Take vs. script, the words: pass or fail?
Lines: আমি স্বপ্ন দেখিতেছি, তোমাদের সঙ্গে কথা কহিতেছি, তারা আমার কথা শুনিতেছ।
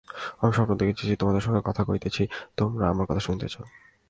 fail